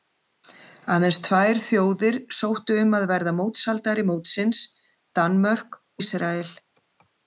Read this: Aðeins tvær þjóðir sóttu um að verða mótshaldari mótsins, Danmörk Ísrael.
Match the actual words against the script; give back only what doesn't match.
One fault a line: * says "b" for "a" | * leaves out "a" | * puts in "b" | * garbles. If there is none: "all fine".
all fine